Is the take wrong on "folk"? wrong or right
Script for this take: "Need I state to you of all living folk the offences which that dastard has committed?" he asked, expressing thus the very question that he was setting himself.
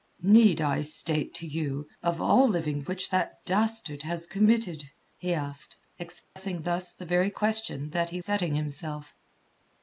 wrong